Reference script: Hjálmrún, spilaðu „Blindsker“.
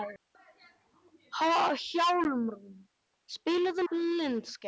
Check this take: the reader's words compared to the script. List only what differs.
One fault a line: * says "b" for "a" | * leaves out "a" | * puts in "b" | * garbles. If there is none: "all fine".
all fine